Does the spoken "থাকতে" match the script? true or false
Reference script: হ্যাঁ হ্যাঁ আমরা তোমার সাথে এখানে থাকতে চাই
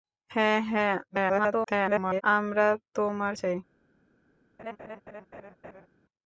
false